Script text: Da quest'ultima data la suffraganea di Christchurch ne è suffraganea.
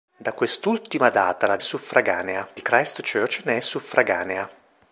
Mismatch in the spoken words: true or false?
false